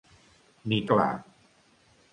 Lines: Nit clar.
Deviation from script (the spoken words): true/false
false